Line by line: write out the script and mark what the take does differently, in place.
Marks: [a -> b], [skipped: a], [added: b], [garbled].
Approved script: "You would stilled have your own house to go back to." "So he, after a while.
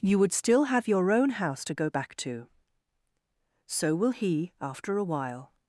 "You would [stilled -> still] have your own house to go back to." "So [added: will] he, after a while.